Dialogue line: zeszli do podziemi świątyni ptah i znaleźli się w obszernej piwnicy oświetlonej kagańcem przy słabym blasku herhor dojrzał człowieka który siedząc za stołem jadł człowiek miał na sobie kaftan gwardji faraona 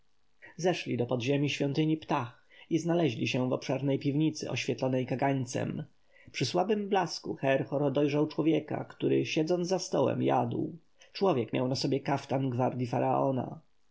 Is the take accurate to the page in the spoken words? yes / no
yes